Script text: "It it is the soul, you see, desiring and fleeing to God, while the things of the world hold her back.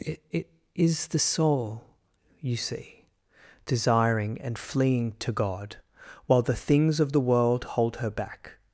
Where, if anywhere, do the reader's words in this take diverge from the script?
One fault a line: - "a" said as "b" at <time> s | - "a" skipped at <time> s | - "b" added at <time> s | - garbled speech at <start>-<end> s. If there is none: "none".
none